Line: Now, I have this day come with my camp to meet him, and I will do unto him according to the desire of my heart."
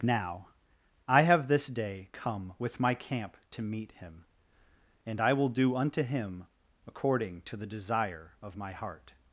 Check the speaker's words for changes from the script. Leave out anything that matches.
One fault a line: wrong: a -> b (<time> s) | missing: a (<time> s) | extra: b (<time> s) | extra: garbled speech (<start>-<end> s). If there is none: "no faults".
no faults